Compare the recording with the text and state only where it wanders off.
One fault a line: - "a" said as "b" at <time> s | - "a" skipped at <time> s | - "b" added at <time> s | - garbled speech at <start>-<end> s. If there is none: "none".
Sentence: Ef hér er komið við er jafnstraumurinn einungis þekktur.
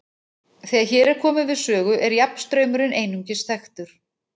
- "Ef" said as "Þegar" at 0.7 s
- "sögu" added at 1.6 s